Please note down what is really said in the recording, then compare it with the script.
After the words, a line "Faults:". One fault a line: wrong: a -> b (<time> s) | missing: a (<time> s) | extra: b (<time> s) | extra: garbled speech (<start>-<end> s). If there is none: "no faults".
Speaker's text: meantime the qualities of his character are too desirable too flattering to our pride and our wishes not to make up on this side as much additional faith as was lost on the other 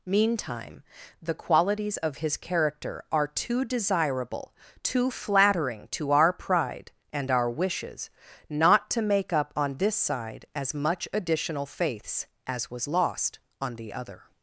meantime the qualities of his character are too desirable too flattering to our pride and our wishes not to make up on this side as much additional faiths as was lost on the other
Faults:
wrong: faith -> faiths (11.6 s)